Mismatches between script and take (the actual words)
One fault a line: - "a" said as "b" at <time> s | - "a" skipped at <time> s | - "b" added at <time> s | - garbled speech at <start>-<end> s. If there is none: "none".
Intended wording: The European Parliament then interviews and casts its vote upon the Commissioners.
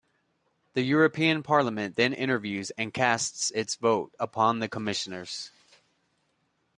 none